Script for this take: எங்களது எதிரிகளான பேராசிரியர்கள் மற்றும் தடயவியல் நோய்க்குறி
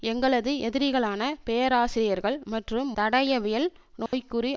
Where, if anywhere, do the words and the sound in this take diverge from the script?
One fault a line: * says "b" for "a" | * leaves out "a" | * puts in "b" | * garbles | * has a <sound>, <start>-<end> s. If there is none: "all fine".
* has a dropout, 4.1-4.1 s